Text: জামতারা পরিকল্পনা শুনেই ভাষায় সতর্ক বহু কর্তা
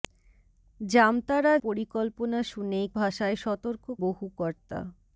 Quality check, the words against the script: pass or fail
pass